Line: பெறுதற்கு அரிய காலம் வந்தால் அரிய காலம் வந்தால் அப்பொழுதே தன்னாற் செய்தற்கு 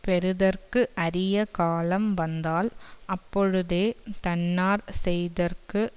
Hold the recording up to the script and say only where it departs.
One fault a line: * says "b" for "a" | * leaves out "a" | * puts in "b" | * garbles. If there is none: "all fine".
* leaves out "அரிய காலம் வந்தால்"